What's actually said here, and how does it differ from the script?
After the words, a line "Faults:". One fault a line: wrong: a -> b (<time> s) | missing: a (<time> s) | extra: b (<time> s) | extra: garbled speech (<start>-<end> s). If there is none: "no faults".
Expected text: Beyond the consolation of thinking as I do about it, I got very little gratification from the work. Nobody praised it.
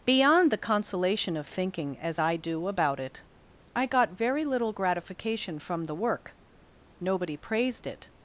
Beyond the consolation of thinking as I do about it, I got very little gratification from the work. Nobody praised it.
Faults:
no faults